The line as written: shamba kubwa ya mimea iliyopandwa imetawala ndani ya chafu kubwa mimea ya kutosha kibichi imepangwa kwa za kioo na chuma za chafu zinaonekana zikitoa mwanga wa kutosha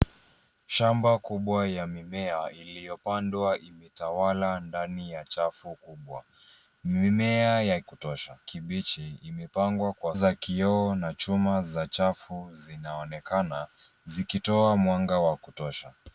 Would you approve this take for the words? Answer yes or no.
yes